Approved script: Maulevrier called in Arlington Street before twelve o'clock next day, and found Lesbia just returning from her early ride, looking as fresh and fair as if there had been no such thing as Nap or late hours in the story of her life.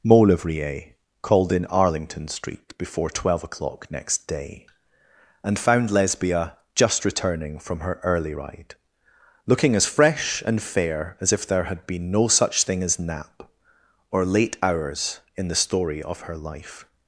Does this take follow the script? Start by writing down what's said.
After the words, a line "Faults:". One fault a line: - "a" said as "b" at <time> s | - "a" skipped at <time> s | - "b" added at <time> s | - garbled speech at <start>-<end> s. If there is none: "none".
Maulevrier called in Arlington Street before twelve o'clock next day, and found Lesbia just returning from her early ride, looking as fresh and fair as if there had been no such thing as Nap or late hours in the story of her life.
Faults:
none